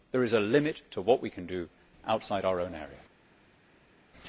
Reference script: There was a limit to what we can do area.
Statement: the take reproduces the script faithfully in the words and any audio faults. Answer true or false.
false